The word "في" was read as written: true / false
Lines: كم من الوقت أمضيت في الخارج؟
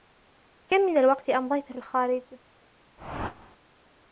false